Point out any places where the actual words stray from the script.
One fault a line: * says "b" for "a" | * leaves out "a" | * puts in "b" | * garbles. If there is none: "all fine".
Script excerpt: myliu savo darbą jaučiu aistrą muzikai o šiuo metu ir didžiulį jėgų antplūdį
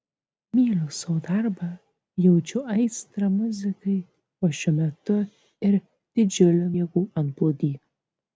all fine